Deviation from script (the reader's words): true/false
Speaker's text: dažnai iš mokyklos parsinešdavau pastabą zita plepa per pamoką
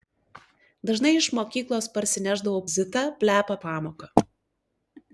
true